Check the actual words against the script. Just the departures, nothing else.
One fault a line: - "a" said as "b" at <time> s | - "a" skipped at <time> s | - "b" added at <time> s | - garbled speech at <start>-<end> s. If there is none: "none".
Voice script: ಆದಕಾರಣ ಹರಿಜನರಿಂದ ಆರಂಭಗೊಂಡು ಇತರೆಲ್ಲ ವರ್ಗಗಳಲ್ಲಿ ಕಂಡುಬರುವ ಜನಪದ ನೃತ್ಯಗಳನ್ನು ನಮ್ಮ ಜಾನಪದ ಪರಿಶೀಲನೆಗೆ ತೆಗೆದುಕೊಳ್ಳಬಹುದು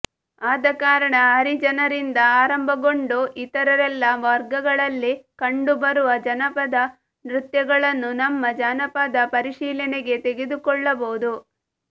none